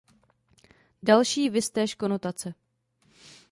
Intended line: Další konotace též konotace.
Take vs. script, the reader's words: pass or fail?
fail